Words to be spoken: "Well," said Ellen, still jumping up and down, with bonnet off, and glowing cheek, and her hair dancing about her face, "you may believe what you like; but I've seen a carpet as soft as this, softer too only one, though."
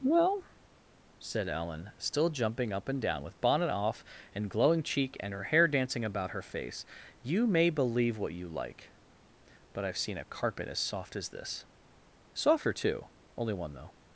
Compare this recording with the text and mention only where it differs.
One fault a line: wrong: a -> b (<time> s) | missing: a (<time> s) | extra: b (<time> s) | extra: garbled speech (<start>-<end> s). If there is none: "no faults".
no faults